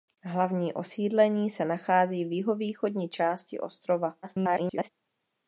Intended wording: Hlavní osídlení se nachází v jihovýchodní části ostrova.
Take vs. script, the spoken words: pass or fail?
fail